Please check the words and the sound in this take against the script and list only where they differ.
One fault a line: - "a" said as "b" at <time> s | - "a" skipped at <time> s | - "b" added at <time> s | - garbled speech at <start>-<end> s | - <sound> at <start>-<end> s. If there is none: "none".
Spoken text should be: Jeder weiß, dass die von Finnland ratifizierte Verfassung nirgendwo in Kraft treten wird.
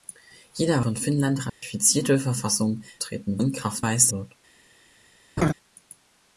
- "weiß dass die" skipped at 0.8 s
- dropout at 1.5-1.6 s
- "nirgendwo" said as "treten" at 3.0 s
- "treten" said as "weiß" at 3.8 s
- laugh at 5.4-5.5 s